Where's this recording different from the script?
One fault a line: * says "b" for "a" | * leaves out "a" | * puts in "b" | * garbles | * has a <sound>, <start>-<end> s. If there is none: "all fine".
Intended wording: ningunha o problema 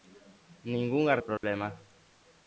* has a dropout, 1.4-1.4 s